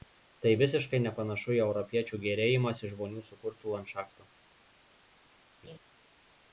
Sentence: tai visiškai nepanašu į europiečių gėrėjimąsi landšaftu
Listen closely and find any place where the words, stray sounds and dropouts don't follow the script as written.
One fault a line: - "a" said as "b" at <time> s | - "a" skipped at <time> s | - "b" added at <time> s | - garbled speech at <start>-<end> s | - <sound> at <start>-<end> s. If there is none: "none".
- "žmonių sukurtu" added at 3.0 s
- laugh at 5.6-5.8 s